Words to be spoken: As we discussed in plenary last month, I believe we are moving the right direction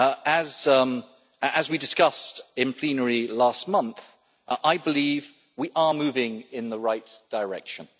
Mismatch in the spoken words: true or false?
true